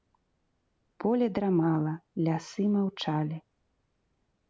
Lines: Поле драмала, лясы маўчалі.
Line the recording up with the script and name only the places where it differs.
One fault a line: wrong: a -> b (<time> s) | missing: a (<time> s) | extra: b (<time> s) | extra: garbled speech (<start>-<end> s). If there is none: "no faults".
no faults